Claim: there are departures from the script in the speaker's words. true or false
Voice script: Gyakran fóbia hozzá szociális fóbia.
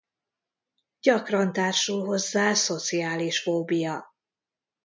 true